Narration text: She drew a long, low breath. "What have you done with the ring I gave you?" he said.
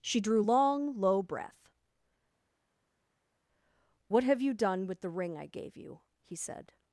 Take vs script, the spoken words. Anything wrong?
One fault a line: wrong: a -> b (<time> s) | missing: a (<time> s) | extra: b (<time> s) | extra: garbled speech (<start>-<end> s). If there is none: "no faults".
missing: a (0.4 s)